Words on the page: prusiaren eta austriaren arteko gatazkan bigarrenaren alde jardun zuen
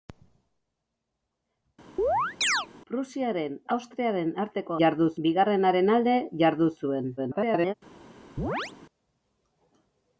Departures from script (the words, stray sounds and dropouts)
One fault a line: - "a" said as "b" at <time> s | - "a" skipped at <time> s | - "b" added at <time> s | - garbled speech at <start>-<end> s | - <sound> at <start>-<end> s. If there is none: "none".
- chirp at 2.0-2.7 s
- "eta" skipped at 3.6 s
- "gatazkan" said as "jardun" at 4.8 s
- garbled speech at 7.2-7.7 s
- chirp at 8.4-8.7 s